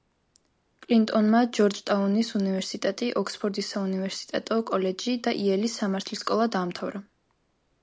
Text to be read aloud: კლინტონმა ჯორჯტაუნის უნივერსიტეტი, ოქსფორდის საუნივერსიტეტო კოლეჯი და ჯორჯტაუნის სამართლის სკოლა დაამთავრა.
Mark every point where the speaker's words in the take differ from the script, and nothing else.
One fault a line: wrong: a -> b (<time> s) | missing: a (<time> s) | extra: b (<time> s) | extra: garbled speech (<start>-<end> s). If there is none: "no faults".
wrong: ჯორჯტაუნის -> იელის (5.4 s)